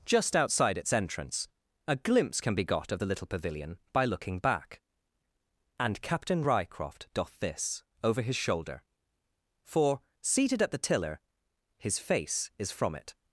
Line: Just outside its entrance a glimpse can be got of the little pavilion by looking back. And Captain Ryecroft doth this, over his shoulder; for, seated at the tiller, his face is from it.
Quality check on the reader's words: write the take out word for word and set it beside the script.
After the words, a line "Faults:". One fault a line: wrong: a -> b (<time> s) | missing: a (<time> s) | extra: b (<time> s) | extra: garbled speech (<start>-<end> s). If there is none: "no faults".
Just outside its entrance a glimpse can be got of the little pavilion by looking back. And Captain Ryecroft doth this, over his shoulder; for, seated at the tiller, his face is from it.
Faults:
no faults